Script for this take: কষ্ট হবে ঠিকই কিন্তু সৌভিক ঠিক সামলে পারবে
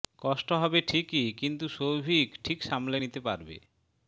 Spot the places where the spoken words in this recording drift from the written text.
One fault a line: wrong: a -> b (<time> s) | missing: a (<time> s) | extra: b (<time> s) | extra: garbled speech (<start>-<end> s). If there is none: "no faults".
extra: নিতে (3.0 s)